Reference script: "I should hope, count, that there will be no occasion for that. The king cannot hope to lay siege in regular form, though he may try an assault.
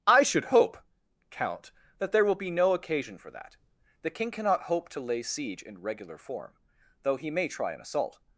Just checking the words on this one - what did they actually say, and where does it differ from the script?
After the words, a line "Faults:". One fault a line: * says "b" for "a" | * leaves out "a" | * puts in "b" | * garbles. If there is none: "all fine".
"I should hope, count, that there will be no occasion for that. The king cannot hope to lay siege in regular form, though he may try an assault.
Faults:
all fine